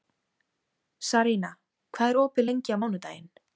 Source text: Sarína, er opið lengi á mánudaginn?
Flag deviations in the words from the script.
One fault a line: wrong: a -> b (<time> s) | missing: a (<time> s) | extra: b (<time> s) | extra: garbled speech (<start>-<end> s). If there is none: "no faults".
extra: hvað (2.0 s)